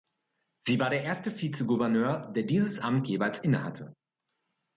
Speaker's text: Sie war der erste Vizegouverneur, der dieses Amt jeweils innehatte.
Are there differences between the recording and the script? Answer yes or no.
no